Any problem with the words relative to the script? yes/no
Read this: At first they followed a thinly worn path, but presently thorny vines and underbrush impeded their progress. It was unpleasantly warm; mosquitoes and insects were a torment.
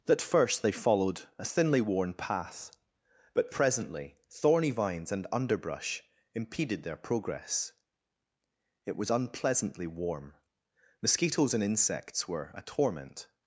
yes